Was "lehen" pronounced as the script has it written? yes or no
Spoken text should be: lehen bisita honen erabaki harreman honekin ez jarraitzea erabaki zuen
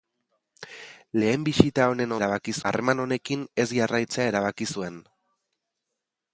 yes